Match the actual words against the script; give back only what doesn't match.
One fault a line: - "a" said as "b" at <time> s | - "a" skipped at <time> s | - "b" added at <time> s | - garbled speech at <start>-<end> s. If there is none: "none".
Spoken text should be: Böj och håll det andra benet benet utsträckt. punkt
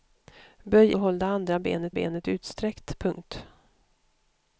none